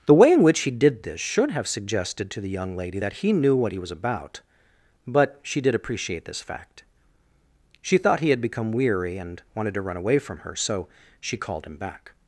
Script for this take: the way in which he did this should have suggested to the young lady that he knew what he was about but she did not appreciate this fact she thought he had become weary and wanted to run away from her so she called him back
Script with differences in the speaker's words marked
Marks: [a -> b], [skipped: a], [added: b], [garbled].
the way in which he did this should have suggested to the young lady that he knew what he was about but she did [skipped: not] appreciate this fact she thought he had become weary and wanted to run away from her so she called him back